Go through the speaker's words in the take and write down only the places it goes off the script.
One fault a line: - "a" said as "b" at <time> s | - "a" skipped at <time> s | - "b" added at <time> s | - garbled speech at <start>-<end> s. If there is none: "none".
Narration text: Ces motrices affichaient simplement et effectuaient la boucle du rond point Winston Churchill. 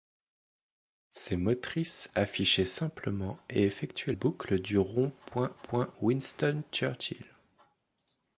- "la" skipped at 4.1 s
- "point" added at 5.6 s